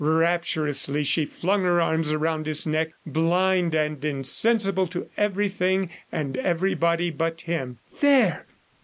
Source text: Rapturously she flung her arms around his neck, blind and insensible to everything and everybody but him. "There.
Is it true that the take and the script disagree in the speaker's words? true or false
false